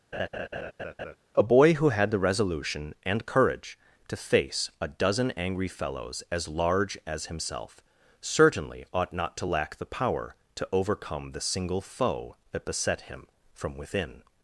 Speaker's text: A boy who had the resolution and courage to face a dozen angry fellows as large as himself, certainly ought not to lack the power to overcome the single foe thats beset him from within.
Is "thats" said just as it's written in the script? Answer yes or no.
no